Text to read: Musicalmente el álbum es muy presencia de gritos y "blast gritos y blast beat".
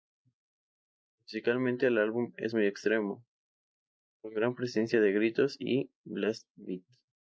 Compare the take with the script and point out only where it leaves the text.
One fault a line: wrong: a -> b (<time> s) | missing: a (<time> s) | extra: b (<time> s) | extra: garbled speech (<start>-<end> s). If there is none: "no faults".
wrong: presencia de gritos y blast -> extremo con gran presencia de (2.7 s)